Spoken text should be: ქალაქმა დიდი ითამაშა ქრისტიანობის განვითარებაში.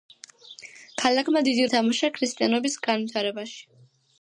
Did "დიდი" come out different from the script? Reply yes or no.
no